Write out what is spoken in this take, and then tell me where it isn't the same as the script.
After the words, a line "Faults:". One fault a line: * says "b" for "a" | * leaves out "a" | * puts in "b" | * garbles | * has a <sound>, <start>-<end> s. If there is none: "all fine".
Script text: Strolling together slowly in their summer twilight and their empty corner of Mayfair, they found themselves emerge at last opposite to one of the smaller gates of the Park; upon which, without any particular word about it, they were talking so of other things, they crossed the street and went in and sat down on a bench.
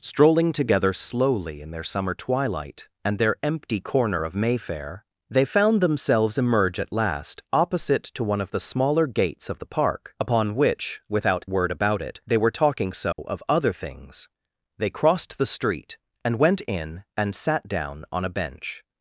Strolling together slowly in their summer twilight and their empty corner of Mayfair, they found themselves emerge at last opposite to one of the smaller gates of the Park; upon which, without word about it, they were talking so of other things, they crossed the street and went in and sat down on a bench.
Faults:
* leaves out "any particular"
* has a dropout, 13.1-13.2 s